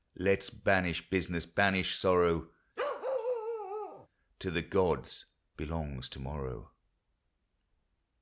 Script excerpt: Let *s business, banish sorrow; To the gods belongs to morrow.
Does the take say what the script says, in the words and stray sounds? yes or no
no